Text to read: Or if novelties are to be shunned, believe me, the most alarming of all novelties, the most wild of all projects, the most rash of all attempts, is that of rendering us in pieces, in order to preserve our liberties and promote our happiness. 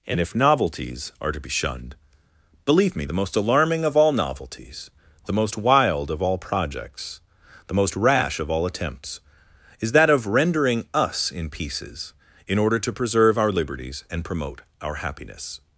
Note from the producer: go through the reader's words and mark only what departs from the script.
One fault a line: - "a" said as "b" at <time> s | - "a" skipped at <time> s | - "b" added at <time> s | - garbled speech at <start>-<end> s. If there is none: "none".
- "Or" said as "And" at 0.1 s